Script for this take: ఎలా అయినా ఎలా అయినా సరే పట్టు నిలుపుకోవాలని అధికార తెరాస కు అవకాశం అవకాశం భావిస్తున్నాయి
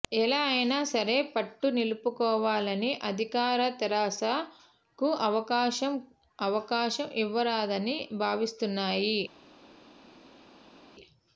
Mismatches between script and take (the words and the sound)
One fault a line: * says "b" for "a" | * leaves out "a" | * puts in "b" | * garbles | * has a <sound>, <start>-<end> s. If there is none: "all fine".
* leaves out "ఎలా అయినా"
* puts in "ఇవ్వరాదని"